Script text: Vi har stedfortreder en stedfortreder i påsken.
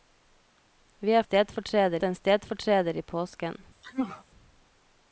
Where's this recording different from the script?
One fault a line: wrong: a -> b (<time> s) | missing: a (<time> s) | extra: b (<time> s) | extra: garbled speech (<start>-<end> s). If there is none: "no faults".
no faults